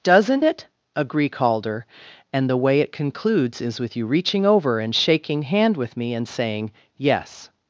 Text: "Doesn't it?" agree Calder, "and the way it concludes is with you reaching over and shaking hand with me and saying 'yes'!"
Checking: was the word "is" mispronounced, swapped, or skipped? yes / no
no